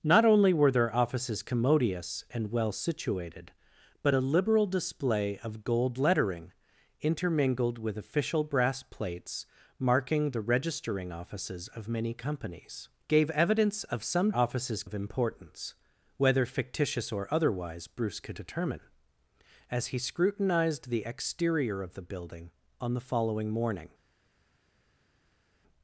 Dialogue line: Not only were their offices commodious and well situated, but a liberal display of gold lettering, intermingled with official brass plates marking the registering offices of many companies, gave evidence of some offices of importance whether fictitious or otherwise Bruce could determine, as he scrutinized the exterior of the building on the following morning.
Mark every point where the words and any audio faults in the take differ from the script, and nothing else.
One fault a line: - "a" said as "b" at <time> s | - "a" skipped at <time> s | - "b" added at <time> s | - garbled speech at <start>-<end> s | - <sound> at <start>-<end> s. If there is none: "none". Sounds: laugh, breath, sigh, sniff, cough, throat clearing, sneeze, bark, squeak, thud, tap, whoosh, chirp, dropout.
none